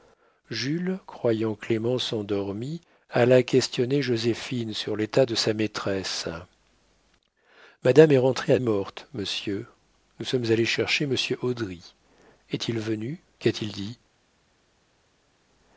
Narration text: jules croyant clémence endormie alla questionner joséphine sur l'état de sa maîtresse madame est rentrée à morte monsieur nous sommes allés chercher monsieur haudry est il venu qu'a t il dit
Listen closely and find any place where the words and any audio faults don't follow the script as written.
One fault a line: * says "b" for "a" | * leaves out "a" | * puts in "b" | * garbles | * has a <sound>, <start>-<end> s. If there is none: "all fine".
all fine